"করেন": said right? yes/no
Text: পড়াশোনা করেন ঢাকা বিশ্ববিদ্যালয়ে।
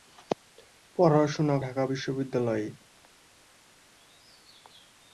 no